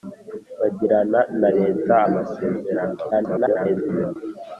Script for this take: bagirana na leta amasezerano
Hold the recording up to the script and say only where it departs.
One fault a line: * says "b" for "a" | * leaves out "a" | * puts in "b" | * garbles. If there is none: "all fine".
* garbles